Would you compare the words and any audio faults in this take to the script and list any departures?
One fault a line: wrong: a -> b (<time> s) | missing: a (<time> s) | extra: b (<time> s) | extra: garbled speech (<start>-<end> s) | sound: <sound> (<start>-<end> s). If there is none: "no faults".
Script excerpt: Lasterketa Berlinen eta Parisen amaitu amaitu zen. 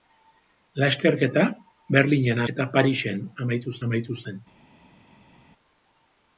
no faults